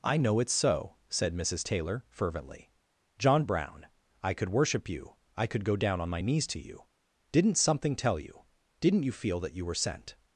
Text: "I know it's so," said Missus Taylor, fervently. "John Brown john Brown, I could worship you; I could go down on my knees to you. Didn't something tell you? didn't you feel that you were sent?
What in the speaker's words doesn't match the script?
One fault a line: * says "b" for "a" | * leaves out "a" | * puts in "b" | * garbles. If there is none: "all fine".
* leaves out "john Brown"